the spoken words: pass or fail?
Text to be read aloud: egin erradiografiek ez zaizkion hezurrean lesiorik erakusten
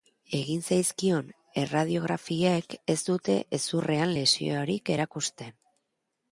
fail